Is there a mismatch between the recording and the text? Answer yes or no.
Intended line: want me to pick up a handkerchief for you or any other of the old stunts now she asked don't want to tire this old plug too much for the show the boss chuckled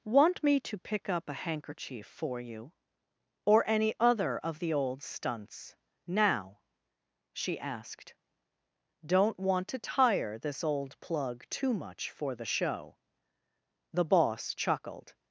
no